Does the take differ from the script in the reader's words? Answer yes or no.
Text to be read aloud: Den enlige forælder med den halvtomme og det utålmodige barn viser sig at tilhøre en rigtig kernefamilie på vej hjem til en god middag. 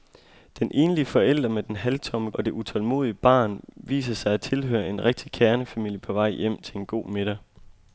no